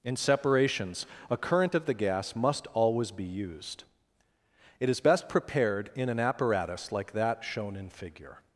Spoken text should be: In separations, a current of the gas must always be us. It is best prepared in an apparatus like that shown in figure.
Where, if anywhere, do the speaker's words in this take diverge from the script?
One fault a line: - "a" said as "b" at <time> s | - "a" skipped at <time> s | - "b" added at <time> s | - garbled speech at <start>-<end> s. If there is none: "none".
- "us" said as "used" at 3.3 s